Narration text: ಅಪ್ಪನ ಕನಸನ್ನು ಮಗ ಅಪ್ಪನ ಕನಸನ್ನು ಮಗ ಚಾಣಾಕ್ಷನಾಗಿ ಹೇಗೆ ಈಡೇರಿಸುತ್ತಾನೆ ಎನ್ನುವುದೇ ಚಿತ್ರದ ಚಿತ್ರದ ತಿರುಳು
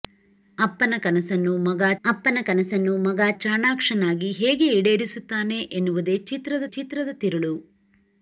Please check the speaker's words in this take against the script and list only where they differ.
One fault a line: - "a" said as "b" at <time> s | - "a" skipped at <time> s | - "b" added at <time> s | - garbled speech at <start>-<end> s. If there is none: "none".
none